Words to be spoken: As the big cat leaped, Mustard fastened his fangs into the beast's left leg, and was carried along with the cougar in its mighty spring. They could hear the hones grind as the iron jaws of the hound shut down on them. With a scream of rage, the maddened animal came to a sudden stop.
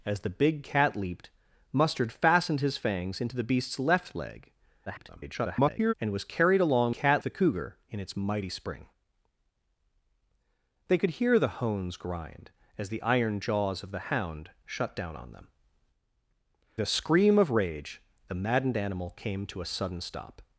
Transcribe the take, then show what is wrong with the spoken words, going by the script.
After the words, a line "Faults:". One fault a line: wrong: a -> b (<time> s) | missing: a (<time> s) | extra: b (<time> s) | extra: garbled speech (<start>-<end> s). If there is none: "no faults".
As the big cat leaped, Mustard fastened his fangs into the beast's left leg, [garbled] and was carried along cat the cougar in its mighty spring. They could hear the hones grind as the iron jaws of the hound shut down on them. A scream of rage, the maddened animal came to a sudden stop.
Faults:
extra: garbled speech (4.9-5.9 s)
wrong: with -> cat (6.9 s)
missing: With (15.5 s)